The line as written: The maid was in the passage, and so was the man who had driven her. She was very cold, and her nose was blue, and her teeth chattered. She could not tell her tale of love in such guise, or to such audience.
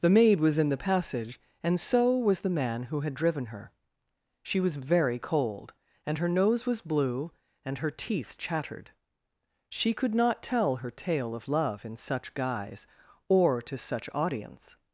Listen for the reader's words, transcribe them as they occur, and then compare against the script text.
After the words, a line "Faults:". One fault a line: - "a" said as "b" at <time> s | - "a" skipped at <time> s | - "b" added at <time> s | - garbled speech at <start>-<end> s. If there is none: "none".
The maid was in the passage, and so was the man who had driven her. She was very cold, and her nose was blue, and her teeth chattered. She could not tell her tale of love in such guise, or to such audience.
Faults:
none